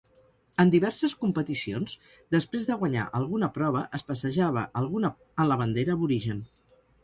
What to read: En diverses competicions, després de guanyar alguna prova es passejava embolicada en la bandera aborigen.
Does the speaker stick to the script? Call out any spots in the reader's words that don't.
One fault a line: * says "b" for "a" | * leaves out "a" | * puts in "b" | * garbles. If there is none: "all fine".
* says "alguna" for "embolicada"